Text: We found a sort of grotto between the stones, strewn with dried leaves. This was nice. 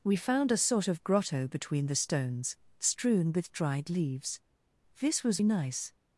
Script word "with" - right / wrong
right